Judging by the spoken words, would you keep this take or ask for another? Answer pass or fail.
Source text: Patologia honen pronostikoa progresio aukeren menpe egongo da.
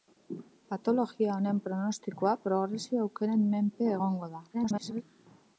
fail